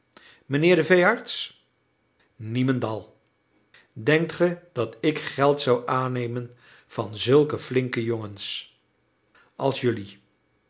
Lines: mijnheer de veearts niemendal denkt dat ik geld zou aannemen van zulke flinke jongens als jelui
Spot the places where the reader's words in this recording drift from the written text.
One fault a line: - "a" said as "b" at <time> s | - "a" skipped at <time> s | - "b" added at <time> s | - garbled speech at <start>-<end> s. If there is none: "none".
- "ge" added at 4.3 s